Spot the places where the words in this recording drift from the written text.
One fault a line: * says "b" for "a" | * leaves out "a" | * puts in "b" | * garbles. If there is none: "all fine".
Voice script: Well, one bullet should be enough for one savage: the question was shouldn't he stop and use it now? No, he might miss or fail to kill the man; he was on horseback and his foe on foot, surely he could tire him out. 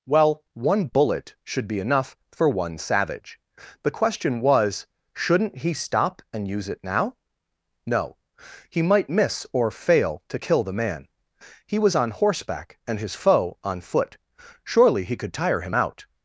all fine